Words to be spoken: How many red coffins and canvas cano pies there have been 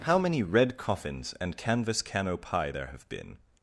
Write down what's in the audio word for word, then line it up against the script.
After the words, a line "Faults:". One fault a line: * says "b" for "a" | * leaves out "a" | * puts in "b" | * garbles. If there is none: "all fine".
How many red coffins and canvas cano pie there have been
Faults:
* says "pie" for "pies"